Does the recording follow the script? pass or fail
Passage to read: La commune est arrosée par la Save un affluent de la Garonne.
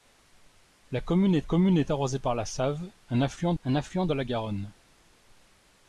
fail